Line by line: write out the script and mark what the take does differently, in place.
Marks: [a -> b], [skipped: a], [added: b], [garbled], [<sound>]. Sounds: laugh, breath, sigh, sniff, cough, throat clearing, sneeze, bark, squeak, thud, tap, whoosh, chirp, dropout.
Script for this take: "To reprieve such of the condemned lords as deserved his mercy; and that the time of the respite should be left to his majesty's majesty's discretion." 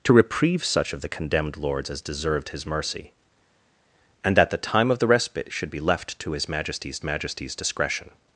"To reprieve such of the condemned lords as deserved his mercy; and that the time of the respite should be left to his majesty's majesty's discretion."